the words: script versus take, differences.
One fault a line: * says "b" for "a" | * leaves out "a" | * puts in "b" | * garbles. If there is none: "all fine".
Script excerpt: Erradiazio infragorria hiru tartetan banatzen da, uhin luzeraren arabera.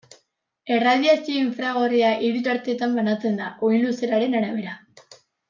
all fine